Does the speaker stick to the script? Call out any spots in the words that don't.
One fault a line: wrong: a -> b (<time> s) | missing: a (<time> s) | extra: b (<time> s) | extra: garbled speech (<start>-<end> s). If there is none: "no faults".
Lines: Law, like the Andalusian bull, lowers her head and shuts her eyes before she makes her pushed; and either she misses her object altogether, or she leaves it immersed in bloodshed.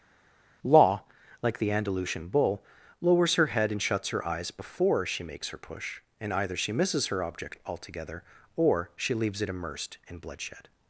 wrong: pushed -> push (5.6 s)